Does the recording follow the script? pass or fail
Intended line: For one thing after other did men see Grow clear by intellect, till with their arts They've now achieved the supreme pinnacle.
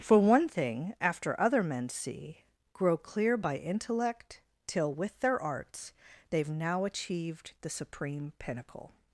fail